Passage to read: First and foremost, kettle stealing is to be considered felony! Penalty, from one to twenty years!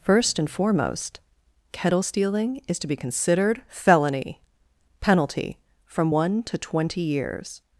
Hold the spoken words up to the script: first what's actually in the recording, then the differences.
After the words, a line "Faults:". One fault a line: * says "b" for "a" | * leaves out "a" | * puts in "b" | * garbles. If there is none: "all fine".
First and foremost, kettle stealing is to be considered felony! Penalty, from one to twenty years!
Faults:
all fine